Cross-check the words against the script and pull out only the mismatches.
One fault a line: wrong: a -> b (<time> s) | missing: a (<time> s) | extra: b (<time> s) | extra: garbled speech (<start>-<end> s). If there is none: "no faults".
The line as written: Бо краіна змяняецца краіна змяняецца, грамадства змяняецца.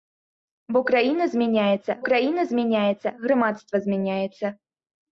no faults